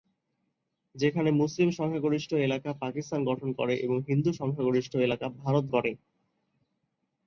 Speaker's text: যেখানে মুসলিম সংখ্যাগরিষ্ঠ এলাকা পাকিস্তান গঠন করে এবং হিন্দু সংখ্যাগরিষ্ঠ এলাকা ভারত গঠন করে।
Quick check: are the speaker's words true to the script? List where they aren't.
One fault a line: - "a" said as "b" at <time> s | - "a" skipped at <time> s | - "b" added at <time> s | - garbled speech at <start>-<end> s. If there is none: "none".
- "গঠন" skipped at 5.7 s